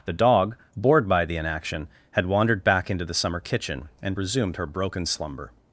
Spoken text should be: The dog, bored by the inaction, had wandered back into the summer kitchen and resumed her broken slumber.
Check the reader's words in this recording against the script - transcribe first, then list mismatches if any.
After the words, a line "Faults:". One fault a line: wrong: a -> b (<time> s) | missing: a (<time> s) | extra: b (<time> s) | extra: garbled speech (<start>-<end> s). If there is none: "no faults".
The dog, bored by the inaction, had wandered back into the summer kitchen and resumed her broken slumber.
Faults:
no faults